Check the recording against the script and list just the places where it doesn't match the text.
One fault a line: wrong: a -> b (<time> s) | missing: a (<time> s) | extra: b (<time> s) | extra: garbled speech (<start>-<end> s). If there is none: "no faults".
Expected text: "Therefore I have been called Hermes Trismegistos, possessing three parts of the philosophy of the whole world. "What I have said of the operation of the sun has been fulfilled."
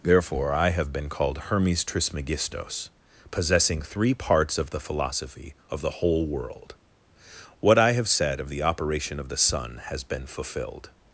no faults